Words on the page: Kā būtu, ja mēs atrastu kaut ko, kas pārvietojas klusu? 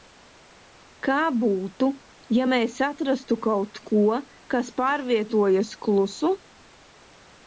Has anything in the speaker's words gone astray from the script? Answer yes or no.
no